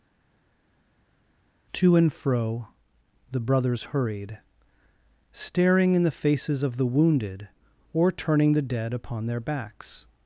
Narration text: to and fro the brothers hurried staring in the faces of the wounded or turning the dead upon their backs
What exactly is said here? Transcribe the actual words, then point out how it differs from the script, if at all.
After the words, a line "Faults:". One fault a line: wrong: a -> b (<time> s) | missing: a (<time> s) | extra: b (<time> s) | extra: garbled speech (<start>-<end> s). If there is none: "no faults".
to and fro the brothers hurried staring in the faces of the wounded or turning the dead upon their backs
Faults:
no faults